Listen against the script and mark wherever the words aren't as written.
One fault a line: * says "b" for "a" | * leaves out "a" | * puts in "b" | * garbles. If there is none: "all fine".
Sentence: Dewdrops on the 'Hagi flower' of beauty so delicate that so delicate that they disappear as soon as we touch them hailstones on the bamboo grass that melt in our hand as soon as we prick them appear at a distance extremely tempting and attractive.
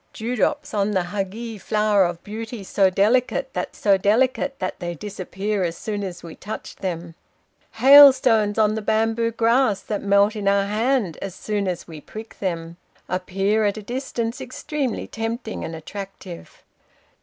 all fine